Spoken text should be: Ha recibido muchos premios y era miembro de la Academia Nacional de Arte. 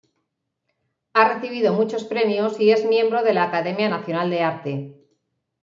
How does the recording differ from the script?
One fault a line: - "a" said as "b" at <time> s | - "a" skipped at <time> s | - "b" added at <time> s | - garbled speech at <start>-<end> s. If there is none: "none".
- "era" said as "es" at 2.7 s